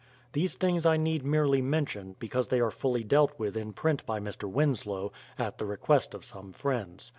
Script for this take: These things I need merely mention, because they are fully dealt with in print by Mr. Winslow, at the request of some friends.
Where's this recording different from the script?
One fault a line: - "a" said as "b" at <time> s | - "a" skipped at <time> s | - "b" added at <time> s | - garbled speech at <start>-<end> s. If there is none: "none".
none